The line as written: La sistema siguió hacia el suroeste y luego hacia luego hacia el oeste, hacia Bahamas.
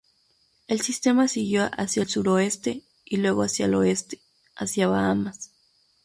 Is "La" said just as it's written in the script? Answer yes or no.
no